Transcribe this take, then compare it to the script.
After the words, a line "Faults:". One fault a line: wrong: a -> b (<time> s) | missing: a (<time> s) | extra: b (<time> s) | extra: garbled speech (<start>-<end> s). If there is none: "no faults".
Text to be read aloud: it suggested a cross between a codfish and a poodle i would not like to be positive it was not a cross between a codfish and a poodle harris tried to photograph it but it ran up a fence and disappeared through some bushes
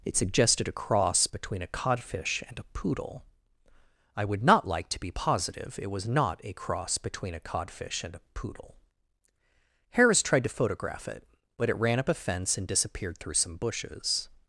it suggested a cross between a codfish and a poodle i would not like to be positive it was not a cross between a codfish and a poodle harris tried to photograph it but it ran up a fence and disappeared through some bushes
Faults:
no faults